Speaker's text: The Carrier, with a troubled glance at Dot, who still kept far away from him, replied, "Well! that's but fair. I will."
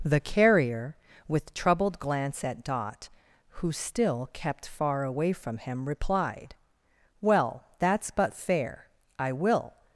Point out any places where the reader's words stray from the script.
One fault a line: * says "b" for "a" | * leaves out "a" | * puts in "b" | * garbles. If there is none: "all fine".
* leaves out "a"